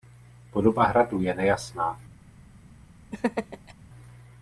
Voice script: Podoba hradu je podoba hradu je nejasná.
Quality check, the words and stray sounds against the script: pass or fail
fail